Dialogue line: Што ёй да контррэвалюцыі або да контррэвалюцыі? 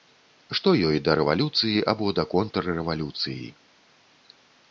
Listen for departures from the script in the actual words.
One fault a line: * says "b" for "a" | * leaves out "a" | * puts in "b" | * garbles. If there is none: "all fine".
* says "рэвалюцыі" for "контррэвалюцыі"